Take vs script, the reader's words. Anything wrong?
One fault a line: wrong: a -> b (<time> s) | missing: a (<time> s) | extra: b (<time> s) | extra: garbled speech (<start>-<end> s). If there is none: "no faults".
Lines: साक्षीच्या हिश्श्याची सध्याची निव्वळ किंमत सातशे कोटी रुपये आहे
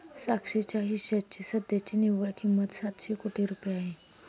no faults